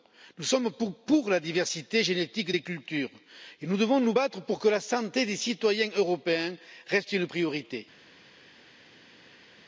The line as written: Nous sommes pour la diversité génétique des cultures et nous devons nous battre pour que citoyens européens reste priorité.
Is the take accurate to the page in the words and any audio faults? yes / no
no